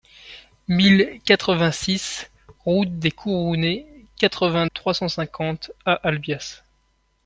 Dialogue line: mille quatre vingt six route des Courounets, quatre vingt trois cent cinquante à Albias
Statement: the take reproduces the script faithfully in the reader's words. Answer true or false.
true